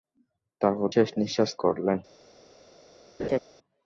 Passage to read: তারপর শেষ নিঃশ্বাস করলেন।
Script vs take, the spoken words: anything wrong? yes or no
no